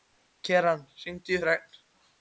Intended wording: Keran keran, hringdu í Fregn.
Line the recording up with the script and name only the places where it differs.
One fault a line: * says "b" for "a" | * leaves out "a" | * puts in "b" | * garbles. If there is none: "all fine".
* leaves out "keran"